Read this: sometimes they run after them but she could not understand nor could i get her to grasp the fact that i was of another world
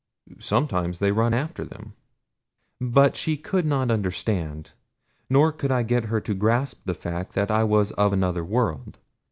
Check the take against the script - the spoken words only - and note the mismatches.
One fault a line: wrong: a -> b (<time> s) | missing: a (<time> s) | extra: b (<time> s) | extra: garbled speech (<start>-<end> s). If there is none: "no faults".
no faults